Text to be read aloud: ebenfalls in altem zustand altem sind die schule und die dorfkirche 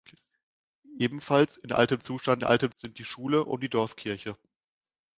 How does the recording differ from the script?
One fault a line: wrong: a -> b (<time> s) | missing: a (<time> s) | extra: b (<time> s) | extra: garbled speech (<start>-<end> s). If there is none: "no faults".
no faults